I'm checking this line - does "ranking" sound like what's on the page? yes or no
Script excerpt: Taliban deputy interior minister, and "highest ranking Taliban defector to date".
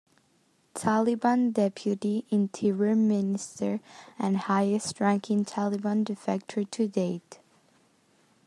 yes